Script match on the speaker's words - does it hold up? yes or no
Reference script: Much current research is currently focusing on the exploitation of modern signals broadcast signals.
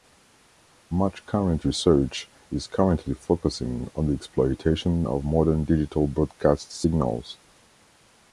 no